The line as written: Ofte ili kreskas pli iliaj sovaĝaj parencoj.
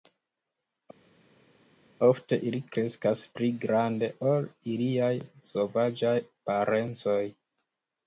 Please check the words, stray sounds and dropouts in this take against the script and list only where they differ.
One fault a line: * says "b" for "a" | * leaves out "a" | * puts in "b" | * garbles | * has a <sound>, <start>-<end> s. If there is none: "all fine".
* puts in "grande ol"